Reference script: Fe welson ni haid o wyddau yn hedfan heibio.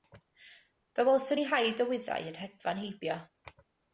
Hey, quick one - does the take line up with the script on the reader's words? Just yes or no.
yes